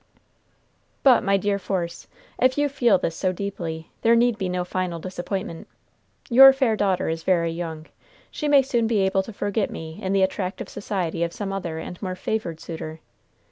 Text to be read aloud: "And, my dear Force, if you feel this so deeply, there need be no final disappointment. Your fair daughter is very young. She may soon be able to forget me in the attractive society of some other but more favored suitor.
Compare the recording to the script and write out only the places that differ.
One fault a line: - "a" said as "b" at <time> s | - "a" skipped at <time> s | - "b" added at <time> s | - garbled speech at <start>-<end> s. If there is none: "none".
- "And" said as "But" at 1.0 s
- "but" said as "and" at 11.8 s